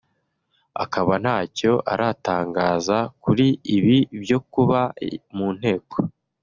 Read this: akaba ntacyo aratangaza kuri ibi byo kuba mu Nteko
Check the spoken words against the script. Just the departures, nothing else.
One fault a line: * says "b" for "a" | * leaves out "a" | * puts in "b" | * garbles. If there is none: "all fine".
all fine